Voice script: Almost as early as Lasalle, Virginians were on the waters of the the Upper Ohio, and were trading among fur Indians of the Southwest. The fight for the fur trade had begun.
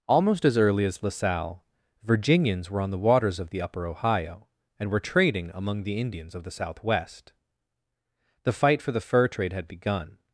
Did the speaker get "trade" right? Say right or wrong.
right